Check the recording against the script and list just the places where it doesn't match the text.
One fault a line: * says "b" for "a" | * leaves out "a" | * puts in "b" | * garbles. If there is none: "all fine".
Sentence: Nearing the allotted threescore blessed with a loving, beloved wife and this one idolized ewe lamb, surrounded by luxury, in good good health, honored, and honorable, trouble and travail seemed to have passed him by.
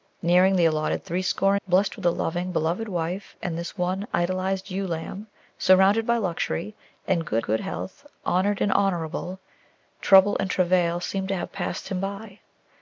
all fine